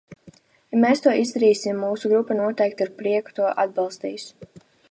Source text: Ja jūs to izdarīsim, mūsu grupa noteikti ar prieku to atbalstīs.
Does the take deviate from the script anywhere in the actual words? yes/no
yes